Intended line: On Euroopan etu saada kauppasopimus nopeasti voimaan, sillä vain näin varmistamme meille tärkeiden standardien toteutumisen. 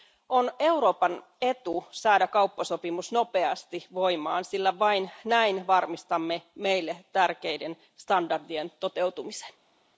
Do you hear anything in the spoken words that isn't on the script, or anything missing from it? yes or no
no